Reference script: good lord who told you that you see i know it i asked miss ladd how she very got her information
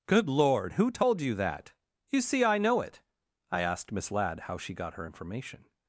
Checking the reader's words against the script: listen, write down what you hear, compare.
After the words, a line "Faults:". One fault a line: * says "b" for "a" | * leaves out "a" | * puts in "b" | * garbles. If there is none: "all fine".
good lord who told you that you see i know it i asked miss ladd how she got her information
Faults:
* leaves out "very"